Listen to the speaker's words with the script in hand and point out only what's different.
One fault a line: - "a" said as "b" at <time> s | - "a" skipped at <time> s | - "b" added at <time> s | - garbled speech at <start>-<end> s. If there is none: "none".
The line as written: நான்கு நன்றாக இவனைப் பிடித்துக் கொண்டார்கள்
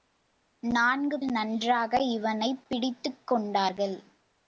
none